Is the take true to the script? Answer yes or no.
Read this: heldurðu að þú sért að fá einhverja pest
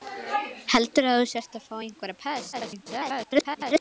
no